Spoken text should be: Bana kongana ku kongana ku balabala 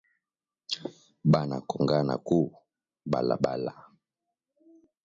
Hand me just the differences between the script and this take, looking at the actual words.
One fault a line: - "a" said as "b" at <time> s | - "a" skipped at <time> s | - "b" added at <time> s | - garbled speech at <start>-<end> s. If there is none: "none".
- "kongana ku" skipped at 2.4 s